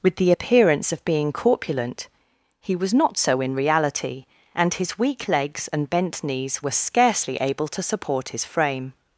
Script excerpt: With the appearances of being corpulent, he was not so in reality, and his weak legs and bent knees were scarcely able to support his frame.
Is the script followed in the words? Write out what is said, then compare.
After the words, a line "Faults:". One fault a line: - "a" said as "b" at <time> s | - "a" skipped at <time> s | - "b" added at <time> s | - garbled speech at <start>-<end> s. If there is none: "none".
With the appearance of being corpulent, he was not so in reality, and his weak legs and bent knees were scarcely able to support his frame.
Faults:
- "appearances" said as "appearance" at 0.3 s